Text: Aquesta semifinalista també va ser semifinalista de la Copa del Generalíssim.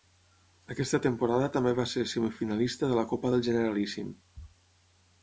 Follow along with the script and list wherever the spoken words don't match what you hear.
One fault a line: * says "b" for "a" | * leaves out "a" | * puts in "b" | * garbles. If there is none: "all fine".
* says "temporada" for "semifinalista"